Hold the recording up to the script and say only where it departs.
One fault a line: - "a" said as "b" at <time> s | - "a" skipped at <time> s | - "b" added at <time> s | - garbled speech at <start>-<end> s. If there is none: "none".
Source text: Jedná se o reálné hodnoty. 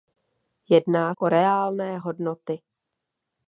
- "se" skipped at 1.1 s